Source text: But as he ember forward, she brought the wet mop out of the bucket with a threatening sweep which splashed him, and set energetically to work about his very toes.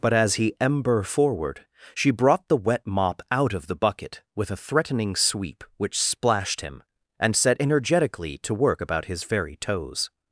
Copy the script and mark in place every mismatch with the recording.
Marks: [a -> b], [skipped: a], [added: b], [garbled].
But as he ember forward, she brought the wet mop out of the bucket with a threatening sweep which splashed him, and set energetically to work about his very toes.